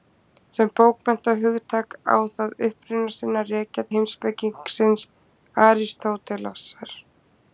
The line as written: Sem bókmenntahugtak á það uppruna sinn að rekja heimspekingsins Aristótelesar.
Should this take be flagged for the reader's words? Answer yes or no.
no